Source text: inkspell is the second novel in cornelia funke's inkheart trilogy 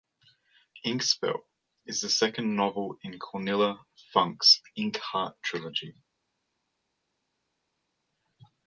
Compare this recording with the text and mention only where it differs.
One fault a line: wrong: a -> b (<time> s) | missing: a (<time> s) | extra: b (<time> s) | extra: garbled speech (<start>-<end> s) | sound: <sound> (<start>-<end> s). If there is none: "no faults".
no faults